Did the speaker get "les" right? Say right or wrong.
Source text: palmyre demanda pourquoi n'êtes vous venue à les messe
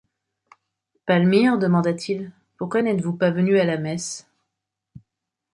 wrong